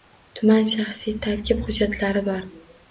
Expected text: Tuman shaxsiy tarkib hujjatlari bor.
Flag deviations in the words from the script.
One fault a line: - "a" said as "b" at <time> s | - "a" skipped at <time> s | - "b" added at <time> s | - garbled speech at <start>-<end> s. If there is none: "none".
none